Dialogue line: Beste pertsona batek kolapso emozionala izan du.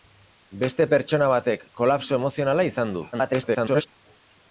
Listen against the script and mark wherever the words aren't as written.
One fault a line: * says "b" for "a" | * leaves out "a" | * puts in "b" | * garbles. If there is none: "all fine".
* garbles